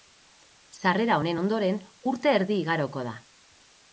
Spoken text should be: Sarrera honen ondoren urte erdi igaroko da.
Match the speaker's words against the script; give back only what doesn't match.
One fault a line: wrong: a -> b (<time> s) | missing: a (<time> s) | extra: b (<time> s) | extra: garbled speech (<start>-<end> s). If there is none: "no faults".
no faults